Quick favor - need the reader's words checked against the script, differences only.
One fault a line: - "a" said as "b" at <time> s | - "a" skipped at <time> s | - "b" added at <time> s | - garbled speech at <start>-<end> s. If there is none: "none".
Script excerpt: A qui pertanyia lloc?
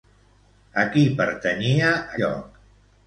none